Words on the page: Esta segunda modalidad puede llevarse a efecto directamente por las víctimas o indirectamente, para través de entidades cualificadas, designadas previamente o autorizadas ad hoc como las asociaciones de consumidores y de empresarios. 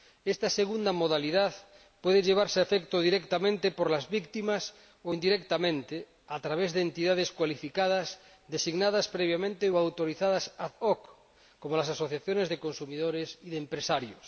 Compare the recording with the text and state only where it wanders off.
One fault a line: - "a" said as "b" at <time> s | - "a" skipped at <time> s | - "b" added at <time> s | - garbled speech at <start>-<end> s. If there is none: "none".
- "para" said as "a" at 6.3 s